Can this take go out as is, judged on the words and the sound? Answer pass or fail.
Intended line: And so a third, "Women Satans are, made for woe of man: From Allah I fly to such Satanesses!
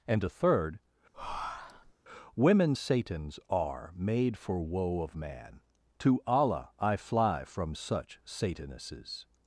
fail